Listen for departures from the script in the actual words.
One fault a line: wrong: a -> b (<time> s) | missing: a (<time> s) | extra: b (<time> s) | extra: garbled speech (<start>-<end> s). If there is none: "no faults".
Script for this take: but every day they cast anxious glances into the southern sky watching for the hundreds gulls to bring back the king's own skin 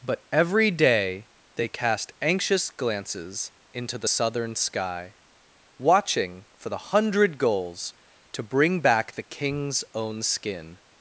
wrong: hundreds -> hundred (6.8 s)